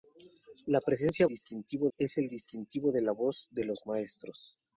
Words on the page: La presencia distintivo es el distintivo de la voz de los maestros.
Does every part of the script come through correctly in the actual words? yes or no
yes